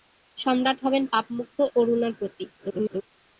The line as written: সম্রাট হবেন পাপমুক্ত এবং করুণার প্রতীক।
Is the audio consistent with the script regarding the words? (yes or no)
no